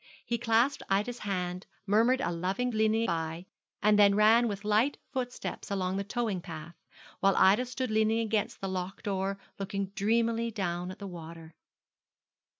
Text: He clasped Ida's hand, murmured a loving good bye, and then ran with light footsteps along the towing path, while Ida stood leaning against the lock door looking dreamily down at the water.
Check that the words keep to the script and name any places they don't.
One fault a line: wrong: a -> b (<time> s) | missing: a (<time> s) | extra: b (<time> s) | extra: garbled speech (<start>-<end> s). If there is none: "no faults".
wrong: good -> leaning (2.7 s)